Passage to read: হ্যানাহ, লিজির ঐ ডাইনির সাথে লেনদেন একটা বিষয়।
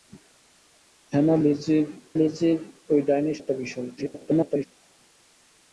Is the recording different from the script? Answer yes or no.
yes